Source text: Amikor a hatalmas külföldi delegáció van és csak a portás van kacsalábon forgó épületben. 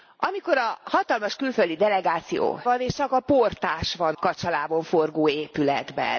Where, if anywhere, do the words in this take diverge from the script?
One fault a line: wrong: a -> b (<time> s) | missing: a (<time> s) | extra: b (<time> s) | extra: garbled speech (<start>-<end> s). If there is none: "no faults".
no faults